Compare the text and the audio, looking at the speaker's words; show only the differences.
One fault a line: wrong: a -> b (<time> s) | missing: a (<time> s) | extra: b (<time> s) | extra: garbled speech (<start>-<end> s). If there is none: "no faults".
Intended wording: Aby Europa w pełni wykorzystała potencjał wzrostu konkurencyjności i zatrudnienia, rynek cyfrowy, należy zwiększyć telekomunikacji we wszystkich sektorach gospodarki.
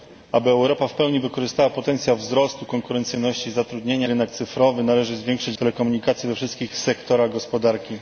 no faults